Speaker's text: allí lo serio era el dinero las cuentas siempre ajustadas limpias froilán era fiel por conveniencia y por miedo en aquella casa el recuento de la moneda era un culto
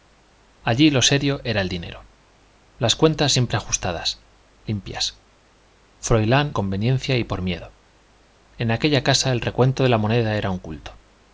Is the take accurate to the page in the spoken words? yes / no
no